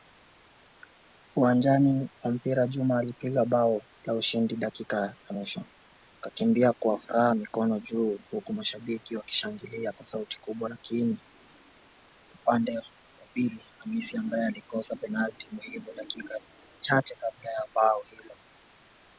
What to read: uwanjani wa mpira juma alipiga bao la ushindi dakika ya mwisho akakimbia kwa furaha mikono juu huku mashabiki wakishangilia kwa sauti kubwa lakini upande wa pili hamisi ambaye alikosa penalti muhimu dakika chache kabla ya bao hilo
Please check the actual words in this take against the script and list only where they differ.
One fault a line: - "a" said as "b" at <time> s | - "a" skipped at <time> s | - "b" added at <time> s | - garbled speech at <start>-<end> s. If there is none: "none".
none